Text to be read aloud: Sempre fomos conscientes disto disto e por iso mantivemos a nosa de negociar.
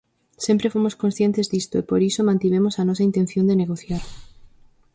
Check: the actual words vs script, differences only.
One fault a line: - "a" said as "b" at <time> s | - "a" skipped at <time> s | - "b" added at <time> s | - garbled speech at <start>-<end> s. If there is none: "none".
- "disto" skipped at 1.8 s
- "intención" added at 3.1 s